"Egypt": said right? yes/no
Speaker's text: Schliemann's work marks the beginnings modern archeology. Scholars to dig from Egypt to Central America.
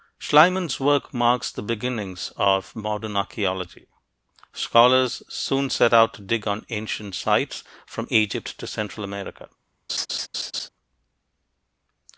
yes